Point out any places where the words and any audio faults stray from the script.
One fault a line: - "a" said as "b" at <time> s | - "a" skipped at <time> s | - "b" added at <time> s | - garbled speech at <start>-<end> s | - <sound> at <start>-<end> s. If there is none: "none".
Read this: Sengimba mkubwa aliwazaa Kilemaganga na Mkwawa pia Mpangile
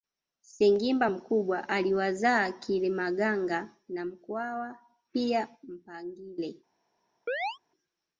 - chirp at 7.3-7.6 s